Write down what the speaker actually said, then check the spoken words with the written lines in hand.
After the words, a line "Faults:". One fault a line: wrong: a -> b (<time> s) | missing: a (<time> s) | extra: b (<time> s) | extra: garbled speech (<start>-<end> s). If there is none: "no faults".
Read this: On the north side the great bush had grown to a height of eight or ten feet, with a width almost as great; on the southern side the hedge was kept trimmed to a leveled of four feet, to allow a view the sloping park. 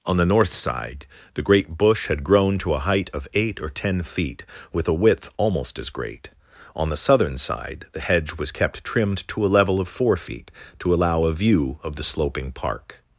On the north side the great bush had grown to a height of eight or ten feet, with a width almost as great; on the southern side the hedge was kept trimmed to a level of four feet, to allow a view of the sloping park.
Faults:
wrong: leveled -> level (9.5 s)
extra: of (11.8 s)